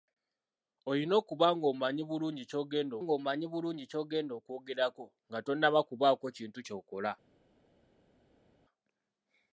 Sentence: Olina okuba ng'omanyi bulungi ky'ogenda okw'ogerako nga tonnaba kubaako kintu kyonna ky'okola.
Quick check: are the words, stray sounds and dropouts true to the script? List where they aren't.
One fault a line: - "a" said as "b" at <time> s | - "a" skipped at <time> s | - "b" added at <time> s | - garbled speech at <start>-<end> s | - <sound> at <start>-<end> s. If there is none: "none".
- "ng'omanyi bulungi ky'ogenda" added at 3.0 s
- "kyonna" skipped at 6.6 s